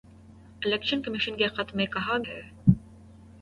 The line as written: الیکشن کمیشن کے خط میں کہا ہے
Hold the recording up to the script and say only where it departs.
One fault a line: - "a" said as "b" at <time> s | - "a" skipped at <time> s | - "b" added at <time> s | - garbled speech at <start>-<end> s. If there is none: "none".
none